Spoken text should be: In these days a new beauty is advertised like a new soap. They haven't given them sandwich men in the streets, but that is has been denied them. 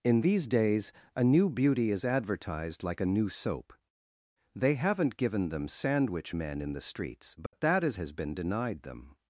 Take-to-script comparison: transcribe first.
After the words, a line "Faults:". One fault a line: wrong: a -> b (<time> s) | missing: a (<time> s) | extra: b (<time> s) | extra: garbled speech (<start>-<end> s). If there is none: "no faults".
In these days a new beauty is advertised like a new soap. They haven't given them sandwich men in the streets, but that is has been denied them.
Faults:
no faults